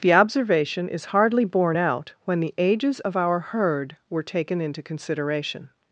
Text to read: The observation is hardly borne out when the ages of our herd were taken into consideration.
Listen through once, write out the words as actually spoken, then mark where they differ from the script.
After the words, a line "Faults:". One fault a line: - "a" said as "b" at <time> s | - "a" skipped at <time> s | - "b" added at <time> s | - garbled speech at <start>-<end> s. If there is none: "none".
The observation is hardly borne out when the ages of our herd were taken into consideration.
Faults:
none